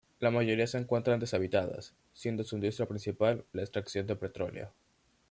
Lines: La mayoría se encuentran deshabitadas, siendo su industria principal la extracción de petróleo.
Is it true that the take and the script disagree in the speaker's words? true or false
false